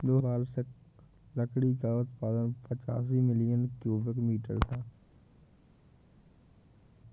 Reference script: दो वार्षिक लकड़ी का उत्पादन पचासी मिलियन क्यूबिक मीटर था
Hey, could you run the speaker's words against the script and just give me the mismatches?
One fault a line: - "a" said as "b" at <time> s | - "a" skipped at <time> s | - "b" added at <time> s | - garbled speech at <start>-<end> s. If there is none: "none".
none